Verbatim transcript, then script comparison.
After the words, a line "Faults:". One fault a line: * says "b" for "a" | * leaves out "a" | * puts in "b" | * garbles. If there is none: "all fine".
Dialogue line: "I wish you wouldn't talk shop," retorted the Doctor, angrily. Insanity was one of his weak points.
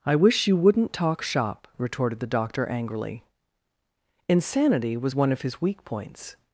"I wish you wouldn't talk shop," retorted the Doctor, angrily. Insanity was one of his weak points.
Faults:
all fine